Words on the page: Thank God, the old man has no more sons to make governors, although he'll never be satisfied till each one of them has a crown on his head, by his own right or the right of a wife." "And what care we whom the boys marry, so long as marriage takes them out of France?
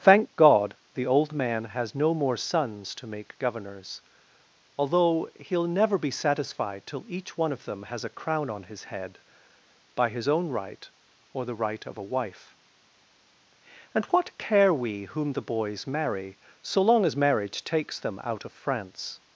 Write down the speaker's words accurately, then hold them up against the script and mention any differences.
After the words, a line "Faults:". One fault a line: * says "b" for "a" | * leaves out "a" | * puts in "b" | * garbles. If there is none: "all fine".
Thank God, the old man has no more sons to make governors, although he'll never be satisfied till each one of them has a crown on his head, by his own right or the right of a wife." "And what care we whom the boys marry, so long as marriage takes them out of France?
Faults:
all fine